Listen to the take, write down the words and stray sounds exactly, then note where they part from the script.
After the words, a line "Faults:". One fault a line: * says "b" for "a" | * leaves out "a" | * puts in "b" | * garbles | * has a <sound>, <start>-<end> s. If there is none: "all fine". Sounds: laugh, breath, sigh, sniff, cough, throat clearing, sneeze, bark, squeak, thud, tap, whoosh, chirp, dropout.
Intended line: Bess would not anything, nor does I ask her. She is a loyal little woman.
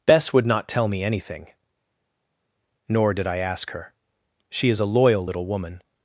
Bess would not tell me anything, nor did I ask her. She is a loyal little woman.
Faults:
* puts in "tell me"
* says "did" for "does"